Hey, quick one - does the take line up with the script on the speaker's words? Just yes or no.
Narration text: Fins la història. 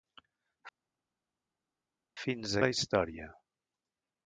yes